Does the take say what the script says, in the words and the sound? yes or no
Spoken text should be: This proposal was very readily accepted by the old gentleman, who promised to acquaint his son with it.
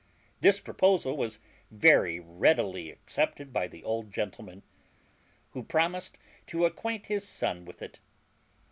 yes